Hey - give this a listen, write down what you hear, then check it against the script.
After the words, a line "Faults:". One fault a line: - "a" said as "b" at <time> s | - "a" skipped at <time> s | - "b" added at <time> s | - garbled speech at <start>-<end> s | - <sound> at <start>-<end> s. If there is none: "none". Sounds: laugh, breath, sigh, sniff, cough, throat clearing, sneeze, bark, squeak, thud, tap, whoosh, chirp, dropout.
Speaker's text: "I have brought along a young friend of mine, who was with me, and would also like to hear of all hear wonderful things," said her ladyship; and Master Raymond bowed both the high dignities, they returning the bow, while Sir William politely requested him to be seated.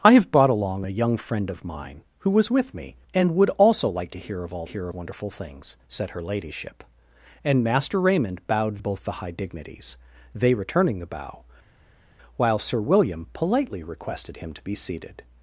"I have brought along a young friend of mine, who was with me, and would also like to hear of all hear wonderful things," said her ladyship; and Master Raymond bowed both the high dignities, they returning the bow, while Sir William politely requested him to be seated.
Faults:
none